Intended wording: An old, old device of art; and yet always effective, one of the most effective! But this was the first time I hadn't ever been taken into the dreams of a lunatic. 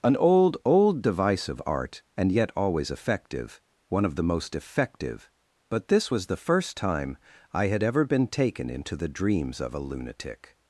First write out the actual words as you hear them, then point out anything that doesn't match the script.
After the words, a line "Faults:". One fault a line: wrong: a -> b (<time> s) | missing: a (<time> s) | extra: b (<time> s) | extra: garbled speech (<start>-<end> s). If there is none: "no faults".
An old, old device of art; and yet always effective, one of the most effective! But this was the first time I had ever been taken into the dreams of a lunatic.
Faults:
wrong: hadn't -> had (7.7 s)